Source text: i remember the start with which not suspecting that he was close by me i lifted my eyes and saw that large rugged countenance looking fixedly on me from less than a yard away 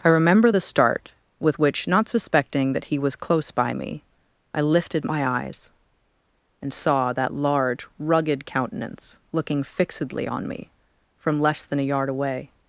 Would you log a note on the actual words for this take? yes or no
no